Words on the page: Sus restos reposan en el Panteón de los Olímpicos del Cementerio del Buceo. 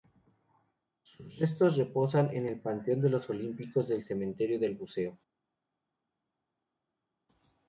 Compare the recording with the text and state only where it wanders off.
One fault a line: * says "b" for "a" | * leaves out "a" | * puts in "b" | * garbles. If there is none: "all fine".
all fine